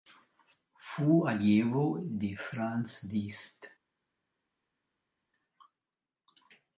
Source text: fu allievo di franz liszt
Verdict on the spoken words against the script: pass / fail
pass